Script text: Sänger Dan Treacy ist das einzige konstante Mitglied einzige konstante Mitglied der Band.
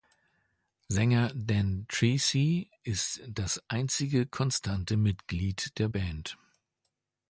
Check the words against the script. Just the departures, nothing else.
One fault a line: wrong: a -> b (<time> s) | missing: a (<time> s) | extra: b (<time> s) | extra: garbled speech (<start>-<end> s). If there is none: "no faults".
missing: einzige konstante Mitglied (5.8 s)